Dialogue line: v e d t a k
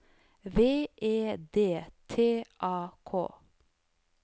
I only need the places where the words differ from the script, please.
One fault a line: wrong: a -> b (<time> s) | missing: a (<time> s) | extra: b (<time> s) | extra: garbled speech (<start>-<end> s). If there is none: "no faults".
no faults